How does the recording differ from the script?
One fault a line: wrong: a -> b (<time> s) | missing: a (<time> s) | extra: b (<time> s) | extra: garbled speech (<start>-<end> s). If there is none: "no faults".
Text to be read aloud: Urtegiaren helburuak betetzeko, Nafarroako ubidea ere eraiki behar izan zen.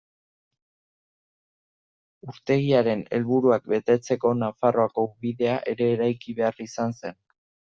no faults